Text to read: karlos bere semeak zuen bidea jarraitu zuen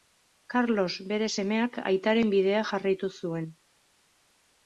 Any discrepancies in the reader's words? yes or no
yes